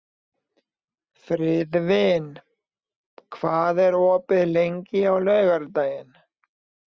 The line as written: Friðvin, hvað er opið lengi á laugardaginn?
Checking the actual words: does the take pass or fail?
pass